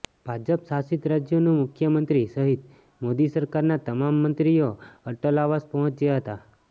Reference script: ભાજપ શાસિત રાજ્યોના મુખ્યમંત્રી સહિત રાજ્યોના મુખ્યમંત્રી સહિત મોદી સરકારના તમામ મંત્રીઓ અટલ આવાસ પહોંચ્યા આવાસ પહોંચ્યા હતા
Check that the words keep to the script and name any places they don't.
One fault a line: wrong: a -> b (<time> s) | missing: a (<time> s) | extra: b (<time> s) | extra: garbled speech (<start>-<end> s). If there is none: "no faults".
missing: રાજ્યોના મુખ્યમંત્રી સહિત (2.6 s)
missing: આવાસ પહોંચ્યા (6.2 s)